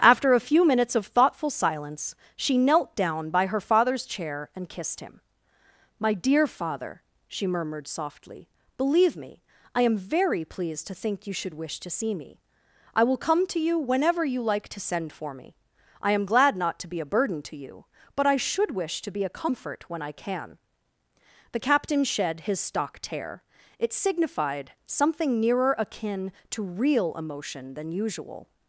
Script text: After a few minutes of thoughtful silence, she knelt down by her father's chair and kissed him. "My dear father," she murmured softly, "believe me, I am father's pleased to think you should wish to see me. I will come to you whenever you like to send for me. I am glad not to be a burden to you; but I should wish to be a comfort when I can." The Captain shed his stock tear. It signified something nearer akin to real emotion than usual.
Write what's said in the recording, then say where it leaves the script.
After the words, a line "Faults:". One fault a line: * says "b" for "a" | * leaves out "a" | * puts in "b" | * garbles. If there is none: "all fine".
After a few minutes of thoughtful silence, she knelt down by her father's chair and kissed him. "My dear father," she murmured softly, "believe me, I am very pleased to think you should wish to see me. I will come to you whenever you like to send for me. I am glad not to be a burden to you; but I should wish to be a comfort when I can." The Captain shed his stock tear. It signified something nearer akin to real emotion than usual.
Faults:
* says "very" for "father's"